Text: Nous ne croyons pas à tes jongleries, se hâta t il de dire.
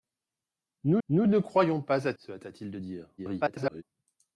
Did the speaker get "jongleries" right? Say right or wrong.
wrong